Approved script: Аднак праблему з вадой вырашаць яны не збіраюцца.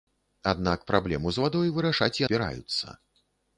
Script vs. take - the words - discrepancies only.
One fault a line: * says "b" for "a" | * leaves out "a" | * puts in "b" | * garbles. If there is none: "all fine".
* leaves out "яны не"